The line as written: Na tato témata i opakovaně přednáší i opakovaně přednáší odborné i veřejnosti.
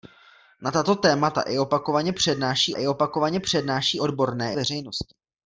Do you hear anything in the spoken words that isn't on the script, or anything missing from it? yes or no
no